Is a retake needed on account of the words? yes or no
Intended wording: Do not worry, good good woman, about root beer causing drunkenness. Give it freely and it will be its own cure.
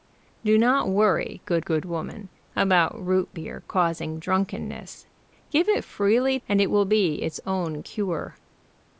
no